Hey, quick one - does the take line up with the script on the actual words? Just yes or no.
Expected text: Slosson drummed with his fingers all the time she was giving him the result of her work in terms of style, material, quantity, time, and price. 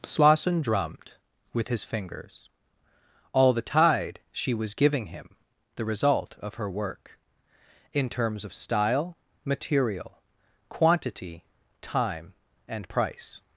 no